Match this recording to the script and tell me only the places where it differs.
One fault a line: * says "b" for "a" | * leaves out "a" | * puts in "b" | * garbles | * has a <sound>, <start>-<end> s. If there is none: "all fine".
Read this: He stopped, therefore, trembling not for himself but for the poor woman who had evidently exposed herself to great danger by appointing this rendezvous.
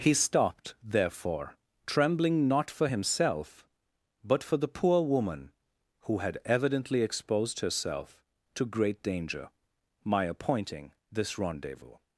* says "my" for "by"